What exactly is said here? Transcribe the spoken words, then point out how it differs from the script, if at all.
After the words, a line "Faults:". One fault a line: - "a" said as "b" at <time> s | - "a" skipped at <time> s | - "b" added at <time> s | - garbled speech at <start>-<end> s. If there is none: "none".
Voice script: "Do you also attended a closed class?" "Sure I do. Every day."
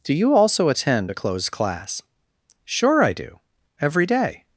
"Do you also attend a closed class?" "Sure I do. Every day."
Faults:
- "attended" said as "attend" at 0.7 s